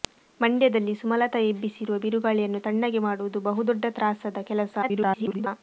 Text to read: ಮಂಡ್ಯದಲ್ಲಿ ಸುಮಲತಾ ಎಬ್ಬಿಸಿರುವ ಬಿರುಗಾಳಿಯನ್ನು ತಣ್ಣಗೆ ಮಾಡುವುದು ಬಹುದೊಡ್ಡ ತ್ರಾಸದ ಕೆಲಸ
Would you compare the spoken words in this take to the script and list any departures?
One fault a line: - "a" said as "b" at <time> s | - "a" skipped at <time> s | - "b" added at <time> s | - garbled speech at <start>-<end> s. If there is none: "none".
- garbled speech at 4.8-5.5 s